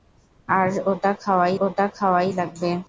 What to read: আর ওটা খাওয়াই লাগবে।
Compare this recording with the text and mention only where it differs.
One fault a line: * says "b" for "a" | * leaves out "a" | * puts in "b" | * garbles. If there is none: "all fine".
* puts in "ওটা খাওয়াই"